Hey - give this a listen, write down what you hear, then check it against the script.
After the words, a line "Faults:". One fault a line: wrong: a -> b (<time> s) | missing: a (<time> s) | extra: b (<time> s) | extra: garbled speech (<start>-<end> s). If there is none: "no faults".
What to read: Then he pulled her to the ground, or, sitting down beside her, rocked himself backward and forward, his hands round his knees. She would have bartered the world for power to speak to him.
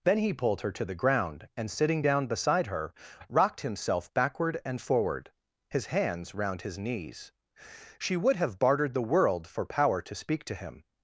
Then he pulled her to the ground, and, sitting down beside her, rocked himself backward and forward, his hands round his knees. She would have bartered the world for power to speak to him.
Faults:
wrong: or -> and (1.6 s)